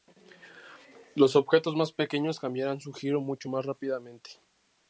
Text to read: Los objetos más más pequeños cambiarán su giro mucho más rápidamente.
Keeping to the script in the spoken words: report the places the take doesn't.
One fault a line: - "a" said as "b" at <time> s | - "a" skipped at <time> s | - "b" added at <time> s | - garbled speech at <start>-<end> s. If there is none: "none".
- "más" skipped at 1.9 s